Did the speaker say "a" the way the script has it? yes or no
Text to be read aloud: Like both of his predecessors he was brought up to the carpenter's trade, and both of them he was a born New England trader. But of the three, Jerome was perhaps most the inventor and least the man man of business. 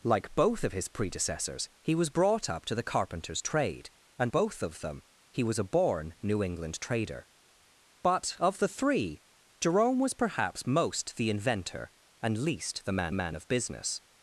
yes